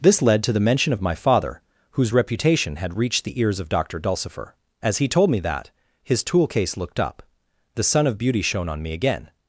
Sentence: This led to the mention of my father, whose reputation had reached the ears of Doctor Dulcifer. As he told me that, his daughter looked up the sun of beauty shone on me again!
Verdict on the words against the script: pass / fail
fail